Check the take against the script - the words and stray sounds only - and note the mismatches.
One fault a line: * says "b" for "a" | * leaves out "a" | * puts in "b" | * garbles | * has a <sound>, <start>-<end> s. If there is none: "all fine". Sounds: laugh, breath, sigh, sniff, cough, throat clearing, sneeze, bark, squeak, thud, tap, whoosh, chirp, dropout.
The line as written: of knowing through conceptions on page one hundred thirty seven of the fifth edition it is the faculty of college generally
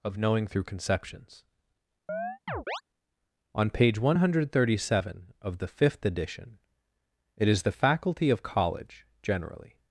* has a chirp, 2.1-2.8 s